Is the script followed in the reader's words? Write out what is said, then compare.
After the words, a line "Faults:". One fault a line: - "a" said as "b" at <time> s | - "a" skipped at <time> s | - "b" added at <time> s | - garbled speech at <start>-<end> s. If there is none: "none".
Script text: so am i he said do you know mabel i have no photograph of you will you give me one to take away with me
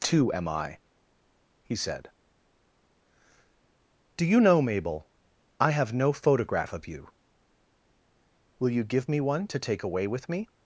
too am i he said do you know mabel i have no photograph of you will you give me one to take away with me
Faults:
- "so" said as "too" at 0.0 s